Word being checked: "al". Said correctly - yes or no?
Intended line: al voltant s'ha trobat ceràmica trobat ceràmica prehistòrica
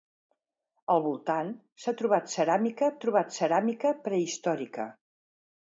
yes